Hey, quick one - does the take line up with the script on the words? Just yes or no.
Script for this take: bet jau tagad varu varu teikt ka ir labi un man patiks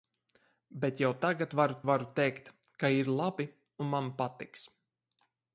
yes